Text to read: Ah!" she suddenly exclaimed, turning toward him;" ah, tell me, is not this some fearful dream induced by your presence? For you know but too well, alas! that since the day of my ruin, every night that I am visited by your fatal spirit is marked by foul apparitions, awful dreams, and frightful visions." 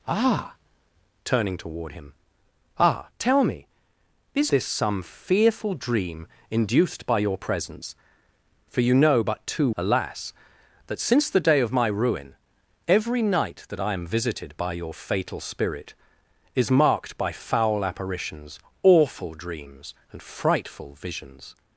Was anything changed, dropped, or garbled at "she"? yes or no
yes